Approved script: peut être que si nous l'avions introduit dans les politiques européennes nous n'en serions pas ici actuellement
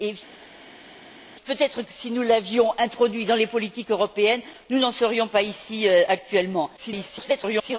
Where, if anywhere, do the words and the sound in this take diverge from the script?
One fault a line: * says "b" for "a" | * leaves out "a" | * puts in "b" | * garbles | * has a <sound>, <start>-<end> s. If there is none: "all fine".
* garbles